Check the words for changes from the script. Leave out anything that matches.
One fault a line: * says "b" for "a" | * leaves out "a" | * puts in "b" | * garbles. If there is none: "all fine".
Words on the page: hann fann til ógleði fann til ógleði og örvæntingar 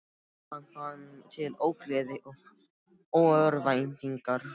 * leaves out "fann til ógleði"